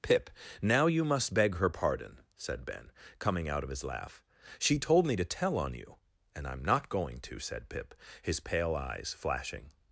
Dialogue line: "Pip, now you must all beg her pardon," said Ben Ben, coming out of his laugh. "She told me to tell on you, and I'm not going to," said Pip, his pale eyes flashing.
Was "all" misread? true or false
true